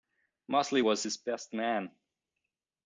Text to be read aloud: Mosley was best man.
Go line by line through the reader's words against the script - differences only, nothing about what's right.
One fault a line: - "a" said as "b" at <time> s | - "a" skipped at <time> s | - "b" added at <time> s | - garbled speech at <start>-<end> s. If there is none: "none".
- "his" added at 1.0 s